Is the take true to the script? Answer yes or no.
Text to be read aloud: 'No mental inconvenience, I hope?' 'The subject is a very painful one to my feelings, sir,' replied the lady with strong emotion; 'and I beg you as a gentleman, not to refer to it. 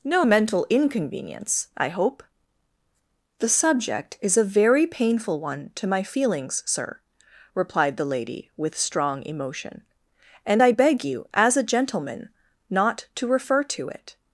yes